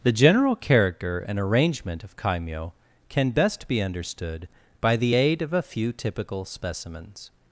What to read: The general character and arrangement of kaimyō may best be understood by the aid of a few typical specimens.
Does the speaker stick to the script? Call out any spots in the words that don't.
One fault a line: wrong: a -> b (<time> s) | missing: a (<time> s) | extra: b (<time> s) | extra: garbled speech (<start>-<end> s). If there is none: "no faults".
wrong: may -> can (3.1 s)